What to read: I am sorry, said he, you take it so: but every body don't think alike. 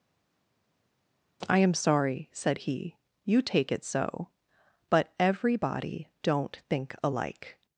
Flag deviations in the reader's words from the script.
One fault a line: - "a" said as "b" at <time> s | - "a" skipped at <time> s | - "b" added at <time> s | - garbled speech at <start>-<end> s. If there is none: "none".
none